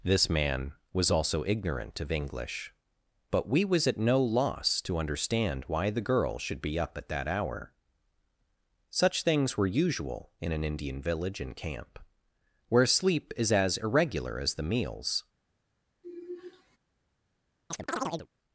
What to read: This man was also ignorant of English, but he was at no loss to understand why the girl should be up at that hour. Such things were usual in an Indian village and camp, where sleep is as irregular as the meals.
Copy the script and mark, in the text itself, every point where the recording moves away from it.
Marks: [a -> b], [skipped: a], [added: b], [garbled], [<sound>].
This man was also ignorant of English, but [he -> we] was at no loss to understand why the girl should be up at that hour. Such things were usual in an Indian village and camp, where sleep is as irregular as the meals. [sigh] [chirp]